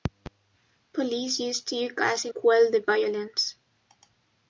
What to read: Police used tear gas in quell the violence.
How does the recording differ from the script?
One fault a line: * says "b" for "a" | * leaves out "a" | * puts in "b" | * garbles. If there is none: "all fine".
all fine